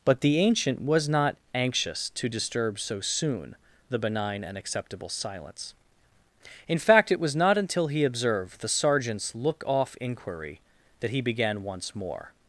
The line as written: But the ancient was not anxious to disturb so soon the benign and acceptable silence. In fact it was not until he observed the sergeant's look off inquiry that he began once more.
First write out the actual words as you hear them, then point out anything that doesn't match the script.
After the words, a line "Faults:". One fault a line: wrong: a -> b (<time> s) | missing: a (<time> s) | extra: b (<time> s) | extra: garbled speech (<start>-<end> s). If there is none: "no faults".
But the ancient was not anxious to disturb so soon the benign and acceptable silence. In fact it was not until he observed the sergeant's look off inquiry that he began once more.
Faults:
no faults